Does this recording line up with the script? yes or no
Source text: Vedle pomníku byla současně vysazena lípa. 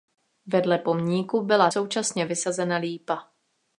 yes